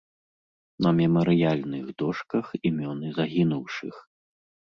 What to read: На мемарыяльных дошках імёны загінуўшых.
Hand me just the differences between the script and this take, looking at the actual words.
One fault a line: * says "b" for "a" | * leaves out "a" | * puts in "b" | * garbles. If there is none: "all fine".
all fine